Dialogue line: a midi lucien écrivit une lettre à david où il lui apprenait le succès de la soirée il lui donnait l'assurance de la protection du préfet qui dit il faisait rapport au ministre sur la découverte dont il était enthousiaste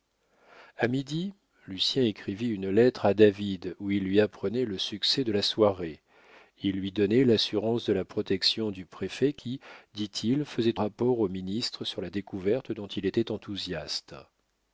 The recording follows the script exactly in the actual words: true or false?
true